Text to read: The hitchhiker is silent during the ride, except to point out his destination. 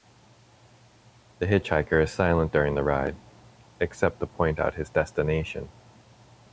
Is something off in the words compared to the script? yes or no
no